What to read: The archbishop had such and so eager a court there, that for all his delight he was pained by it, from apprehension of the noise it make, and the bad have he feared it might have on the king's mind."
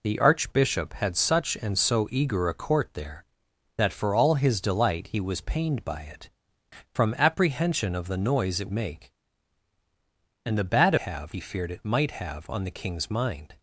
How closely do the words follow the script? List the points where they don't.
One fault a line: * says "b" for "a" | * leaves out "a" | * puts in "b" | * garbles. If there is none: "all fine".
all fine